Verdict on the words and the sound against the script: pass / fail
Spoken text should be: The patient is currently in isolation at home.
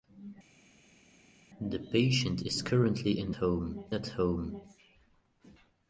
fail